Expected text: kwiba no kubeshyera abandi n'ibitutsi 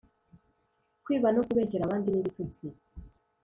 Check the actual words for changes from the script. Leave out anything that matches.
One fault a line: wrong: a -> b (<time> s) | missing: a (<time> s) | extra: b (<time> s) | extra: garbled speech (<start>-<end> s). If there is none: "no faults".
no faults